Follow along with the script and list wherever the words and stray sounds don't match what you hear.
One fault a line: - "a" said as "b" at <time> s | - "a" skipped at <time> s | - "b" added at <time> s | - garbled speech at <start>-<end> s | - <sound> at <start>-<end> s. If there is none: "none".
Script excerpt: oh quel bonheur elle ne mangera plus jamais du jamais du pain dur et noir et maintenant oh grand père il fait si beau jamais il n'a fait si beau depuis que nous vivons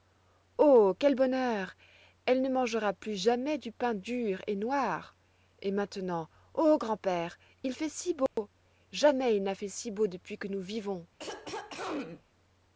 - "jamais du" skipped at 3.7 s
- dropout at 8.3-8.4 s
- throat clearing at 11.2-12.2 s